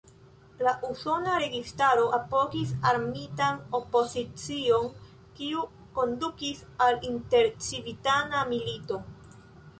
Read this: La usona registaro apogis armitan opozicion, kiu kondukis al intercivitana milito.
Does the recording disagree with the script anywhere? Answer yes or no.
no